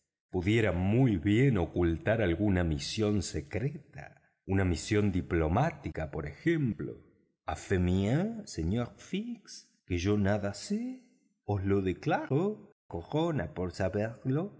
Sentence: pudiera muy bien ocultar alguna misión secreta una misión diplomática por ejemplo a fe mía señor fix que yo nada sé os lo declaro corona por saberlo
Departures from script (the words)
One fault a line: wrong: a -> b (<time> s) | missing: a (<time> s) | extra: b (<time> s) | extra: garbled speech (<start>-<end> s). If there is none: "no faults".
no faults